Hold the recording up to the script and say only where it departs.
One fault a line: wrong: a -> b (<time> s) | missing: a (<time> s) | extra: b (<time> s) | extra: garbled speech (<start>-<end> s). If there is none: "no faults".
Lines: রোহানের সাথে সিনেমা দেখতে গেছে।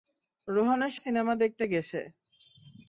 missing: সাথে (0.9 s)